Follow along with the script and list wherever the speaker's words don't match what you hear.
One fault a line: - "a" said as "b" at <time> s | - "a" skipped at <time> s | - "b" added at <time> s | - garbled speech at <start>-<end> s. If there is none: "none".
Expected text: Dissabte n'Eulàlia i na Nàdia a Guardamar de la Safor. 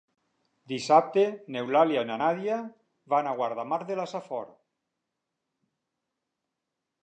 - "van" added at 3.1 s